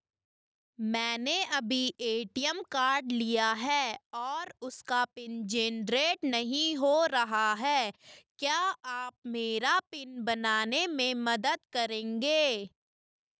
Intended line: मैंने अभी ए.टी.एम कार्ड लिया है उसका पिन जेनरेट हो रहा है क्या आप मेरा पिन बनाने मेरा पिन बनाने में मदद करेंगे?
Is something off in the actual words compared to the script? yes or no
yes